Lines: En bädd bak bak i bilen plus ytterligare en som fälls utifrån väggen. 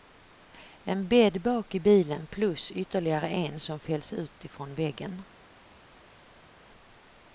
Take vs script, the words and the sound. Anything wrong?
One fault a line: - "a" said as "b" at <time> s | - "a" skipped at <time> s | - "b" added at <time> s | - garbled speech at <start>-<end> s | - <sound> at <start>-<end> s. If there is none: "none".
- "bak" skipped at 1.8 s